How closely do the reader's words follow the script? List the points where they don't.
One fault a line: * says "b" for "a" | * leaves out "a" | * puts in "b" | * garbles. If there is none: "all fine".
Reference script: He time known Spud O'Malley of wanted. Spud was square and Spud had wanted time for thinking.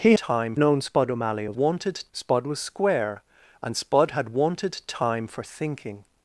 all fine